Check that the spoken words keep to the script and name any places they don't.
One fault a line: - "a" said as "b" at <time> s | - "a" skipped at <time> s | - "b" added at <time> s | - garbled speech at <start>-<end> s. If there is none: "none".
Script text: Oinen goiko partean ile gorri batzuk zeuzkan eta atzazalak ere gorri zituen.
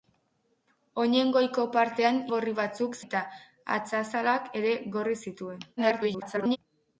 - "ile" skipped at 2.2 s
- "zeuzkan" skipped at 3.0 s
- garbled speech at 5.8-6.6 s